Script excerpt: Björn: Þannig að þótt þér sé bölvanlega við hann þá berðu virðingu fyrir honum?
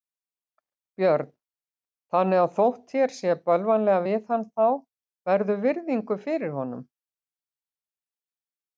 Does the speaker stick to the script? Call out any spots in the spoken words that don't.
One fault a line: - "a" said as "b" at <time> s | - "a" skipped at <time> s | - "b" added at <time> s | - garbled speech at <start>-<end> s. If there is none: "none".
none